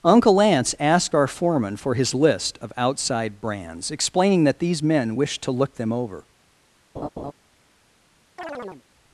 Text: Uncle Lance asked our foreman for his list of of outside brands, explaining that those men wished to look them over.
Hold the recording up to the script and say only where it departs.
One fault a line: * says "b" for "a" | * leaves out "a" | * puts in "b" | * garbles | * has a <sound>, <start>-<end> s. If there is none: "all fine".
* leaves out "of"
* says "these" for "those"
* has a laugh, 7.0-7.3 s
* has a chirp, 8.4-8.8 s